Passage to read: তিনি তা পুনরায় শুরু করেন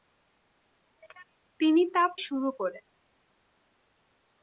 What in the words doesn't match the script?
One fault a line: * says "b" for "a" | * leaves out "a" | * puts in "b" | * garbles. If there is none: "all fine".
* leaves out "পুনরায়"